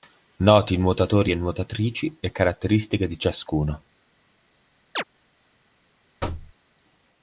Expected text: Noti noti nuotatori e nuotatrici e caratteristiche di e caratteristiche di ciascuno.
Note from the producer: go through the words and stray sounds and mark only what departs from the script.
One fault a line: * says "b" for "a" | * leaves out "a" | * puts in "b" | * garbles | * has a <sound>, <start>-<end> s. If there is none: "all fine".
* leaves out "noti"
* leaves out "e caratteristiche di"
* has a chirp, 5.0-5.0 s
* has a thud, 6.2-6.5 s